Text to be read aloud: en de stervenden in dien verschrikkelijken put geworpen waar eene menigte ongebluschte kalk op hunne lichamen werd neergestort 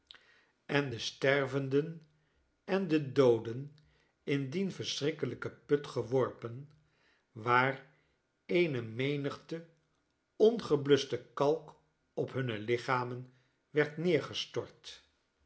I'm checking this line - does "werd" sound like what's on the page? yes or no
yes